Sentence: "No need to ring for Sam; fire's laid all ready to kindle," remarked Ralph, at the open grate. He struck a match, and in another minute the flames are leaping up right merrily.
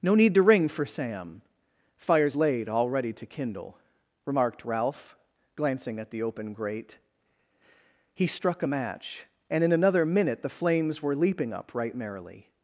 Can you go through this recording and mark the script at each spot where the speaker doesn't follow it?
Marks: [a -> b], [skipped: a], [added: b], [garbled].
"No need to ring for Sam; fire's laid all ready to kindle," remarked Ralph, [added: glancing] at the open grate. He struck a match, and in another minute the flames [are -> were] leaping up right merrily.